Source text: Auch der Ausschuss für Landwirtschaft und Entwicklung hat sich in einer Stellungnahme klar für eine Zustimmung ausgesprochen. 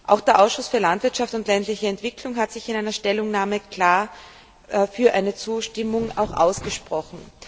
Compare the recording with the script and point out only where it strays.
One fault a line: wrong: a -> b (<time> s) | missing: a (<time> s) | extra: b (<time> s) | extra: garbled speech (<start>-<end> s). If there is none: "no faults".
extra: ländliche (1.5 s)